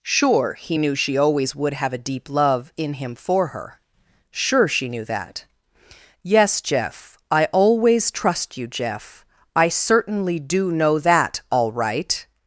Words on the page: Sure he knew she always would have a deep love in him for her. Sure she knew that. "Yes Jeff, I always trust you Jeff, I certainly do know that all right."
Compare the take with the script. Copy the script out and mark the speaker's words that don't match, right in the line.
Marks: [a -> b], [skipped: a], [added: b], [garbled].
Sure he knew she always would have a deep love in him for her. Sure she knew that. "Yes Jeff, I always trust you Jeff, I certainly do know that all right."